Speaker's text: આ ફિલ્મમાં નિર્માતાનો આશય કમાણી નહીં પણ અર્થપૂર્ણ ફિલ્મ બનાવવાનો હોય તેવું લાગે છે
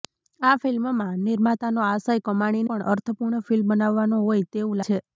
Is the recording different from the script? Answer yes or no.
yes